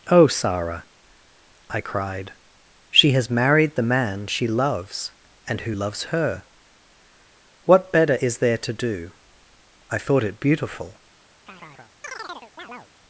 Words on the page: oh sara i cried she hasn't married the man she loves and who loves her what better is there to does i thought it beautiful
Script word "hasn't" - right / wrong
wrong